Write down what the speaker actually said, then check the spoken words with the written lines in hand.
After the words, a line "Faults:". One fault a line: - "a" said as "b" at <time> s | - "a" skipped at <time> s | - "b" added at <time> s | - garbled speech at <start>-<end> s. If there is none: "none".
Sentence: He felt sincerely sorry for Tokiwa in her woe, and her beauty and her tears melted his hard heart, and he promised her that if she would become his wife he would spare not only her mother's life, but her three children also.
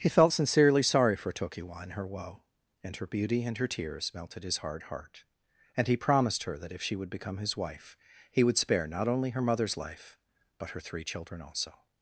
He felt sincerely sorry for Tokiwa in her woe, and her beauty and her tears melted his hard heart, and he promised her that if she would become his wife he would spare not only her mother's life, but her three children also.
Faults:
none